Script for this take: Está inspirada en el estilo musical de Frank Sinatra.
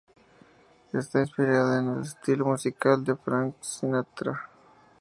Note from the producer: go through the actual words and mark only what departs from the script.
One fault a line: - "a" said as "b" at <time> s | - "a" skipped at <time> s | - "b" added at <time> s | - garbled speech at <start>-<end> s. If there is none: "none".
none